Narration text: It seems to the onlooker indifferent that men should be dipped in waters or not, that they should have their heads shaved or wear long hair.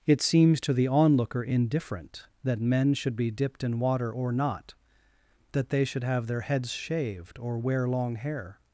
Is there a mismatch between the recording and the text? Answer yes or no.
yes